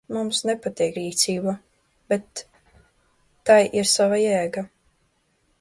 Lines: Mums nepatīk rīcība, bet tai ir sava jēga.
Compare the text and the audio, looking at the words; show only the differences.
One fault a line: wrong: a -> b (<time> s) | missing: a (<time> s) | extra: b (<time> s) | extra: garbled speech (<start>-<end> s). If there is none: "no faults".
no faults